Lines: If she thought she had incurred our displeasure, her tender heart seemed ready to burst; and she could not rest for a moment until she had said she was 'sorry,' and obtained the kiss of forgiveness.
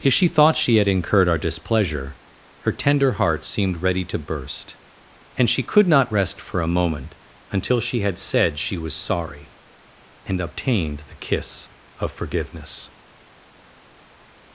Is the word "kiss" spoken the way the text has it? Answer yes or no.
yes